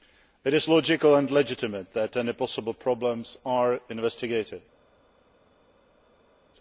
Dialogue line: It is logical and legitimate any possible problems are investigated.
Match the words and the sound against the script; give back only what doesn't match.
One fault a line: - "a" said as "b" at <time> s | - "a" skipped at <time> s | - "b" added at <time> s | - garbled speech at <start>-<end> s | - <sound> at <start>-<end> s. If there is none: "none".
- "that" added at 1.9 s